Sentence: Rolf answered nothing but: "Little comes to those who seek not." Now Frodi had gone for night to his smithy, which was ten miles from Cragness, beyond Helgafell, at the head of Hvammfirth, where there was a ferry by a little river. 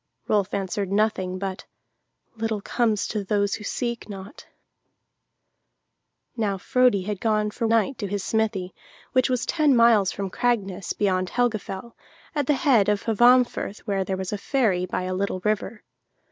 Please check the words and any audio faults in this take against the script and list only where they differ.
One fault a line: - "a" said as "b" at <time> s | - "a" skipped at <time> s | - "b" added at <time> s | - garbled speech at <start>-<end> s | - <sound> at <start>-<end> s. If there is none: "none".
none